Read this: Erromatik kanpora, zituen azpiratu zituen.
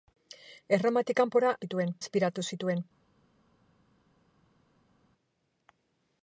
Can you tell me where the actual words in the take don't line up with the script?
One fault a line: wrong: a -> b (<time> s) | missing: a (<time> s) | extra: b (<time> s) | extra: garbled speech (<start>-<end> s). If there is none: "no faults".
no faults